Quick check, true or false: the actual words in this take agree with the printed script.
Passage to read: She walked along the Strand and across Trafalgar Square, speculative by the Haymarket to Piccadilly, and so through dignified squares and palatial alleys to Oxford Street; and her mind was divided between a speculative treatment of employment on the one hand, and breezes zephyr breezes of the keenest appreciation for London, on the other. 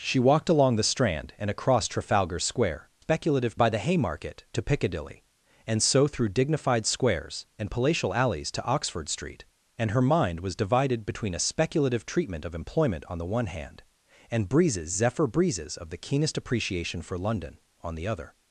true